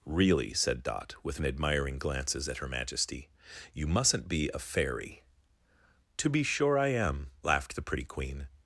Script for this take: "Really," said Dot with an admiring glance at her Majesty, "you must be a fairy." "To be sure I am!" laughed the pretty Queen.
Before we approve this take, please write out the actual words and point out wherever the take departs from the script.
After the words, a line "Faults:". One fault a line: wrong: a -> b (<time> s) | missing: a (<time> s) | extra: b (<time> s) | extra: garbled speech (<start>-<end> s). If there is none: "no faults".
"Really," said Dot with an admiring glances at her Majesty, "you mustn't be a fairy." "To be sure I am!" laughed the pretty Queen.
Faults:
wrong: glance -> glances (2.0 s)
wrong: must -> mustn't (3.9 s)